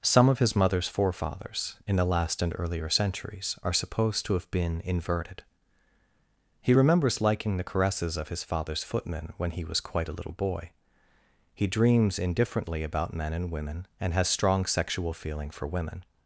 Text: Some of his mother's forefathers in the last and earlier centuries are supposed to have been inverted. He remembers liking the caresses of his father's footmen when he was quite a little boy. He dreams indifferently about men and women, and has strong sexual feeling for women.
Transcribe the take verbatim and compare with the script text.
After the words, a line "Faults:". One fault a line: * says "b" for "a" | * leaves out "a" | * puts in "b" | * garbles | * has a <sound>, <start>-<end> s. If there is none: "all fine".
Some of his mother's forefathers in the last and earlier centuries are supposed to have been inverted. He remembers liking the caresses of his father's footmen when he was quite a little boy. He dreams indifferently about men and women, and has strong sexual feeling for women.
Faults:
all fine